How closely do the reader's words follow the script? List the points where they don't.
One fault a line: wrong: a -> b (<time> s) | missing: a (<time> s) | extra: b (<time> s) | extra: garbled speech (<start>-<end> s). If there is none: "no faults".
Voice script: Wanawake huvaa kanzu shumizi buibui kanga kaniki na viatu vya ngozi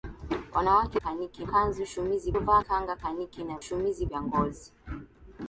wrong: huvaa -> kaniki (1.0 s)
wrong: buibui -> huvaa (2.3 s)
wrong: viatu -> shumizi (3.6 s)